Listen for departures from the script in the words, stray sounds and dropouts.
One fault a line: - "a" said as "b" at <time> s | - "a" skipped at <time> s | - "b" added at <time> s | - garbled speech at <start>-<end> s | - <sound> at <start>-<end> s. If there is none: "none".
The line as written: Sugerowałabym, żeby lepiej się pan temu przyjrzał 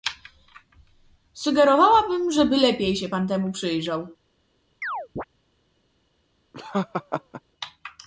- chirp at 4.8-5.2 s
- laugh at 6.5-7.4 s